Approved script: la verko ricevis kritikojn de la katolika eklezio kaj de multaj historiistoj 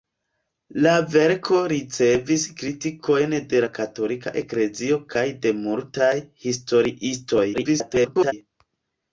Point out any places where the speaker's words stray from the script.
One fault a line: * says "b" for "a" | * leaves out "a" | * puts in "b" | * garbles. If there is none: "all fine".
* garbles